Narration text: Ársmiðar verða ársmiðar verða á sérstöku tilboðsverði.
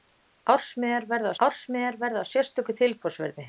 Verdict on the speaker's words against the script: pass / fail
pass